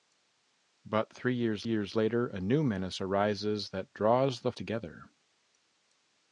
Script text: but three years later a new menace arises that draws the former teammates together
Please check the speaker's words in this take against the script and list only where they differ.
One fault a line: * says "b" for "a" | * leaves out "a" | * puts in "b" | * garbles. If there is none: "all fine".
* puts in "years"
* leaves out "former teammates"